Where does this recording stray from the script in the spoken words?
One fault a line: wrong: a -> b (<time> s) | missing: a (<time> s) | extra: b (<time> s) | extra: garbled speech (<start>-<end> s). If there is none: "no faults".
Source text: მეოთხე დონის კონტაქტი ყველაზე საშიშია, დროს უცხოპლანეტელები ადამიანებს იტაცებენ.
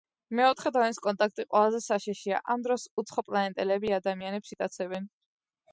extra: ამ (2.5 s)